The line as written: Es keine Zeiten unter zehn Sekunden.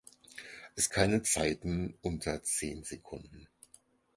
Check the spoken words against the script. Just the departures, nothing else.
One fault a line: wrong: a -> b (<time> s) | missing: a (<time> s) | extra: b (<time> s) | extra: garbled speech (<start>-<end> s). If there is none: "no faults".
no faults